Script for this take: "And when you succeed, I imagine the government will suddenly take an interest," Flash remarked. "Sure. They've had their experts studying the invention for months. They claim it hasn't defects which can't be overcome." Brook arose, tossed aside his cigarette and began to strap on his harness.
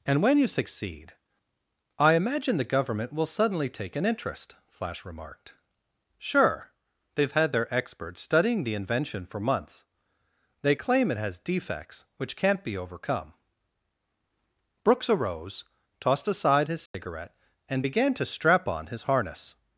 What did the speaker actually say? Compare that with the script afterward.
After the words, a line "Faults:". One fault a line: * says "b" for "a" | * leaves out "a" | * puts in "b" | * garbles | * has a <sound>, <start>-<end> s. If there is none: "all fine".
"And when you succeed, I imagine the government will suddenly take an interest," Flash remarked. "Sure. They've had their experts studying the invention for months. They claim it has defects which can't be overcome." Brooks arose, tossed aside his cigarette and began to strap on his harness.
Faults:
* says "has" for "hasn't"
* says "Brooks" for "Brook"
* has a dropout, 16.9-16.9 s